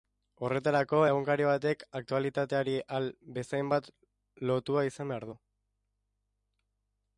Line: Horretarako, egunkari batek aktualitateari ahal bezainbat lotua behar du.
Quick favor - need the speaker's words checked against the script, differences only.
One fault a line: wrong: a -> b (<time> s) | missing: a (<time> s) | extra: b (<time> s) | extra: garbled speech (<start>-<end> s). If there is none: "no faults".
extra: izan (4.9 s)